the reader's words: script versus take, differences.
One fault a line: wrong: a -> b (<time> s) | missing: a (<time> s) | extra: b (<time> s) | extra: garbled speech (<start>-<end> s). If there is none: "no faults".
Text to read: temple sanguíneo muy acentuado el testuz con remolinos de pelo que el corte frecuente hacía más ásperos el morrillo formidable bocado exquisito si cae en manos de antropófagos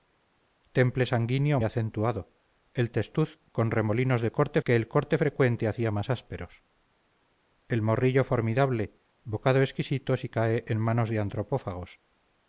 missing: muy (1.6 s)
wrong: pelo -> corte (4.3 s)